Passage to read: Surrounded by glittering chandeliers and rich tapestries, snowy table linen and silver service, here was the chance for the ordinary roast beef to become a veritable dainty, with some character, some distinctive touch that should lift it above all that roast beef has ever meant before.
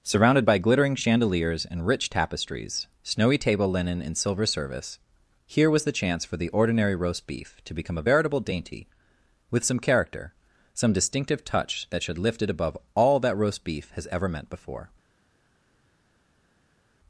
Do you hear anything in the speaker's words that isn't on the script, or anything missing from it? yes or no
no